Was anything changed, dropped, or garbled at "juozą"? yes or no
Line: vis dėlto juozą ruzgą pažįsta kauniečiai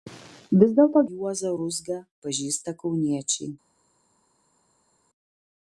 no